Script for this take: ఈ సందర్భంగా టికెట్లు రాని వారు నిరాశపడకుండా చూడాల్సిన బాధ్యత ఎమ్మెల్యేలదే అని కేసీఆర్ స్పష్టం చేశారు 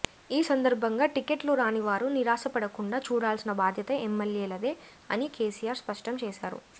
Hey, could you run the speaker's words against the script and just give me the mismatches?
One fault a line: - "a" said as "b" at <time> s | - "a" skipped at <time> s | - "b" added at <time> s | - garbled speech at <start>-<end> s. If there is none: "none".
none